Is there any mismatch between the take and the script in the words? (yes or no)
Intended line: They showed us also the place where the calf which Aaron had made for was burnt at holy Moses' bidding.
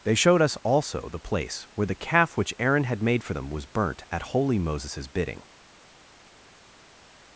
yes